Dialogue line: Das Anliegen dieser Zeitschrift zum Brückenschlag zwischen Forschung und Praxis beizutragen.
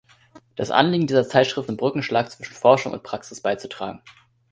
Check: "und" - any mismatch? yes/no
no